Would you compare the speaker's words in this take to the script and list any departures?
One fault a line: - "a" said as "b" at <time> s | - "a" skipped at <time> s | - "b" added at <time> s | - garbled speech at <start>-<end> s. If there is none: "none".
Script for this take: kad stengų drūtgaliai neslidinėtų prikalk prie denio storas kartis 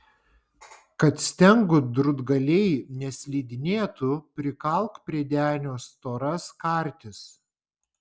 none